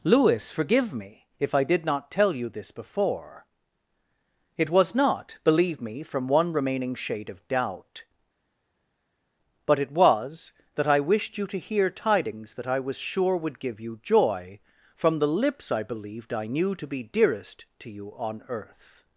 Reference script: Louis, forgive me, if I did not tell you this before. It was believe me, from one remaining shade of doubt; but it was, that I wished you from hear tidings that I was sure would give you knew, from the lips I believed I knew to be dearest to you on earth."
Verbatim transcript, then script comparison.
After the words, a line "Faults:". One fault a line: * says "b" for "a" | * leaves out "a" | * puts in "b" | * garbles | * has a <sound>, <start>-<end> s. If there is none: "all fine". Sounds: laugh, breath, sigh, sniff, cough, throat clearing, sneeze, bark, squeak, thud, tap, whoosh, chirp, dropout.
Louis, forgive me, if I did not tell you this before. It was not, believe me, from one remaining shade of doubt; but it was, that I wished you to hear tidings that I was sure would give you joy, from the lips I believed I knew to be dearest to you on earth."
Faults:
* puts in "not"
* says "to" for "from"
* says "joy" for "knew"